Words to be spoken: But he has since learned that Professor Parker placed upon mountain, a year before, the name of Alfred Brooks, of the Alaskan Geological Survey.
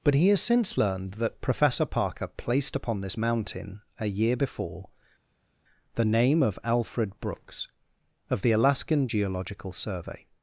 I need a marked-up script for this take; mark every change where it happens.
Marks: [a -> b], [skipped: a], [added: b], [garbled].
But he has since learned that Professor Parker placed upon [added: this] mountain, a year before, the name of Alfred Brooks, of the Alaskan Geological Survey.